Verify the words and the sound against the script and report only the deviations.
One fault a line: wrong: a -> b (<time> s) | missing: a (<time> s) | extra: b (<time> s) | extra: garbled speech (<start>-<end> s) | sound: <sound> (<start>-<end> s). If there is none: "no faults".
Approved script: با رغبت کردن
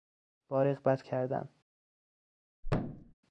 sound: thud (2.6-3.1 s)